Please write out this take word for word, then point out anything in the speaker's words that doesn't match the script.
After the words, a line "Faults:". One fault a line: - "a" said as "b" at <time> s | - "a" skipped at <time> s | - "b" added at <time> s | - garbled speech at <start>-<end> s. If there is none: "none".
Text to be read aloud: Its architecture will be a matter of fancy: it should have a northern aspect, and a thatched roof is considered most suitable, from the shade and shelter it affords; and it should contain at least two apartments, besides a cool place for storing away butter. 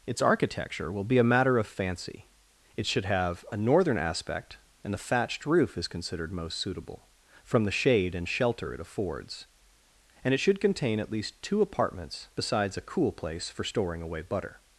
Its architecture will be a matter of fancy: it should have a northern aspect, and the thatched roof is considered most suitable, from the shade and shelter it affords; and it should contain at least two apartments, besides a cool place for storing away butter.
Faults:
- "a" said as "the" at 4.9 s